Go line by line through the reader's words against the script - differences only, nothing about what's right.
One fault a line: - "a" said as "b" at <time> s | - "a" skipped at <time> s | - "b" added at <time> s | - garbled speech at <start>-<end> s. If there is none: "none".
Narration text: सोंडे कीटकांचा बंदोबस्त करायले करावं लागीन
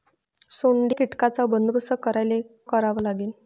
none